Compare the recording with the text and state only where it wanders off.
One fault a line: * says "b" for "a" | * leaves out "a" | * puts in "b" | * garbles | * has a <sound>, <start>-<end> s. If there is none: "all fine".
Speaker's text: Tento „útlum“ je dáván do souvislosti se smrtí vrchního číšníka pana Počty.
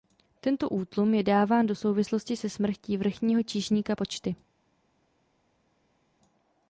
* leaves out "pana"